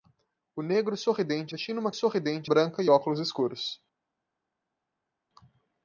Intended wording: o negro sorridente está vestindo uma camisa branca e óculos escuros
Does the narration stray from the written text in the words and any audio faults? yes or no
yes